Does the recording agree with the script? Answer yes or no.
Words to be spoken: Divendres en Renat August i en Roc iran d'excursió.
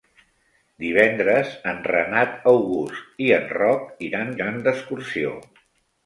no